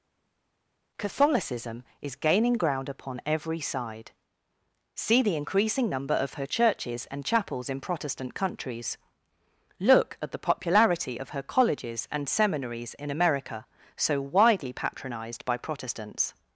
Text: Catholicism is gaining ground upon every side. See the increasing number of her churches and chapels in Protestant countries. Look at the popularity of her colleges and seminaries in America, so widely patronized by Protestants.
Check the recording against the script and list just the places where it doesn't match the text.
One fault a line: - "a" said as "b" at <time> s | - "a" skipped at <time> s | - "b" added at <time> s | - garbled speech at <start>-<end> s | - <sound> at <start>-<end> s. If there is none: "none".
none